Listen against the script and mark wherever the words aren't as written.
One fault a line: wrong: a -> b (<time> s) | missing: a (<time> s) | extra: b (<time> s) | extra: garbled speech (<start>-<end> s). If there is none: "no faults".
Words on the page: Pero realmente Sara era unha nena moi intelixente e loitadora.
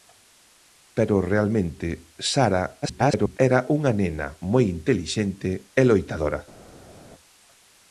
extra: garbled speech (2.8-3.4 s)